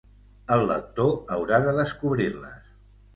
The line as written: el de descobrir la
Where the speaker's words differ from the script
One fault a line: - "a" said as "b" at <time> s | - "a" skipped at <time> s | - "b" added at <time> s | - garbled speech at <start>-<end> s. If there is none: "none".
- "lector haurà" added at 0.7 s
- "la" said as "les" at 2.4 s